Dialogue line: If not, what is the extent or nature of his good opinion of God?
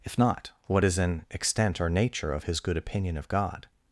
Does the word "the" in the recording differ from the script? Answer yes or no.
yes